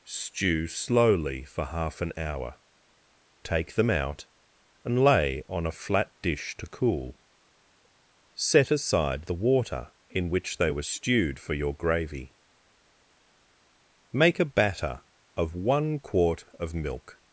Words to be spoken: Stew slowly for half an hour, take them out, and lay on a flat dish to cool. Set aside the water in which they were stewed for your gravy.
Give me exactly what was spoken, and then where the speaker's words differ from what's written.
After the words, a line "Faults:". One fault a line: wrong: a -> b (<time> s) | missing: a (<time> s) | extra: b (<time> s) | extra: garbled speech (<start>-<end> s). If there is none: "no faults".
Stew slowly for half an hour, take them out, and lay on a flat dish to cool. Set aside the water in which they were stewed for your gravy. Make a batter of one quart of milk
Faults:
extra: Make a batter of one quart of milk (14.1 s)